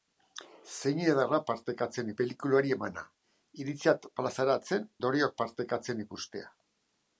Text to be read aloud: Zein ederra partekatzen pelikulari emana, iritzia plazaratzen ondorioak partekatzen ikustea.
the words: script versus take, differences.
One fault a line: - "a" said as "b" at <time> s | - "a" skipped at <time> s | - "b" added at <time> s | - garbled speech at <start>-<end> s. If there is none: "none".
none